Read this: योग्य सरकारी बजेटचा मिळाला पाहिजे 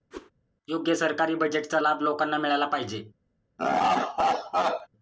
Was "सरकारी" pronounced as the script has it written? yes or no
yes